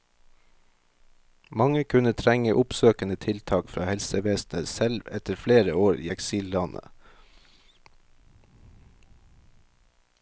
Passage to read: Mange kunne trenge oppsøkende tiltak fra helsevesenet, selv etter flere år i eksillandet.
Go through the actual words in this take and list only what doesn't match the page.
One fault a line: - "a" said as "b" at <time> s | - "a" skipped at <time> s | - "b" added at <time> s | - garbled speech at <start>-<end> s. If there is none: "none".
none